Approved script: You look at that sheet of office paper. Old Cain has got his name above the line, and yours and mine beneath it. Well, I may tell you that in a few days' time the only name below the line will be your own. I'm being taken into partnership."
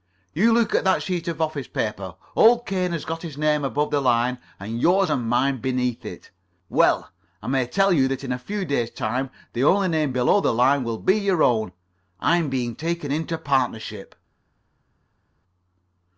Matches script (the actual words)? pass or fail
pass